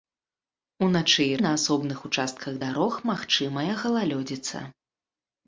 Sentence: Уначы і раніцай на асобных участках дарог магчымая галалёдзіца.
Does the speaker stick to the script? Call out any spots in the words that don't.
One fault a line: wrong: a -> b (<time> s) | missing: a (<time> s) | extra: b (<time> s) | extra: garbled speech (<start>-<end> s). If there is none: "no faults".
missing: раніцай (1.3 s)